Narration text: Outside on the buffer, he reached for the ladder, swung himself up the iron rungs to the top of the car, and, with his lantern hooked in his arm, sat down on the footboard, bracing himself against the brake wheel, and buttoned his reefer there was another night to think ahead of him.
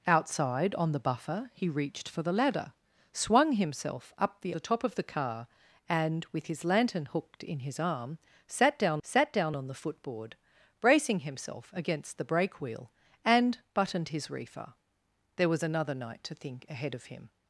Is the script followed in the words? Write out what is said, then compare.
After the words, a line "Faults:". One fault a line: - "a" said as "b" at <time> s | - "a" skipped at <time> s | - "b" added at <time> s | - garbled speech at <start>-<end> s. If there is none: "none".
Outside on the buffer, he reached for the ladder, swung himself up the the top of the car, and, with his lantern hooked in his arm, sat down sat down on the footboard, bracing himself against the brake wheel, and buttoned his reefer there was another night to think ahead of him.
Faults:
- "iron rungs to" skipped at 4.5 s
- "sat down" added at 9.0 s